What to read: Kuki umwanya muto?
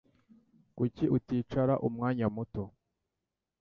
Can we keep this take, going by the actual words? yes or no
no